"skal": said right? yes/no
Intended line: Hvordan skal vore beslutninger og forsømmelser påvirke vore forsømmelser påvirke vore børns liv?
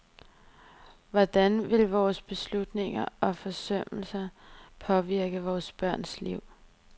no